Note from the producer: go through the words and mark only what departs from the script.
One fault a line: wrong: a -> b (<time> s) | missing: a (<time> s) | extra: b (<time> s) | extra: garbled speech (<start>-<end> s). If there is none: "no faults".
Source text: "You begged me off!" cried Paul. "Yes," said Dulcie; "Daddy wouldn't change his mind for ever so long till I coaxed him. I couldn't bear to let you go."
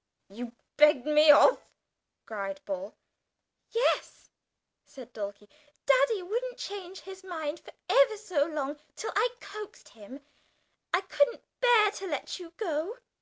no faults